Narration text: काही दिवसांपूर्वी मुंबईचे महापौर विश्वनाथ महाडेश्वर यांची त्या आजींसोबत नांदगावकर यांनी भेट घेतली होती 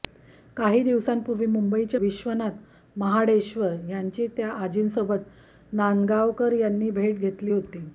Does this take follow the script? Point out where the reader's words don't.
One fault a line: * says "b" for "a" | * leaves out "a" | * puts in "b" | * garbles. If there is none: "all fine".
* leaves out "महापौर"